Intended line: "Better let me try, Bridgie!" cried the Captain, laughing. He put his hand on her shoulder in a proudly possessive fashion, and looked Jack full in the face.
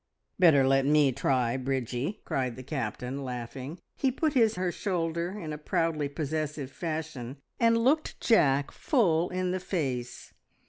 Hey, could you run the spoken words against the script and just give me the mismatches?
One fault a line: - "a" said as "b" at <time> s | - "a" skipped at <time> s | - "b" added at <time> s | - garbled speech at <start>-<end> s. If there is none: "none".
- "hand on" skipped at 4.5 s